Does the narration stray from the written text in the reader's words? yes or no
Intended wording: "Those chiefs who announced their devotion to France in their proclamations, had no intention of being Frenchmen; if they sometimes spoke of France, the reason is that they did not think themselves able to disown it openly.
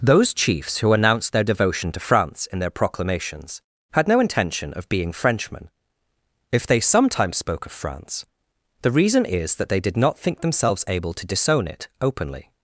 no